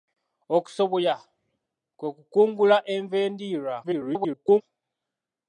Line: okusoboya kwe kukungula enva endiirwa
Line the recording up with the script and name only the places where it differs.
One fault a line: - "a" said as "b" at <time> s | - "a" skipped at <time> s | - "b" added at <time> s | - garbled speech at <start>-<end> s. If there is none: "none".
- garbled speech at 3.8-4.6 s